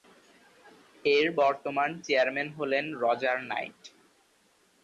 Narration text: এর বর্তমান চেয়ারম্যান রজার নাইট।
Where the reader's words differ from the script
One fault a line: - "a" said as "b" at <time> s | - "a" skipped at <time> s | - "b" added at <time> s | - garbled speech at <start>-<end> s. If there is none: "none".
- "হলেন" added at 2.6 s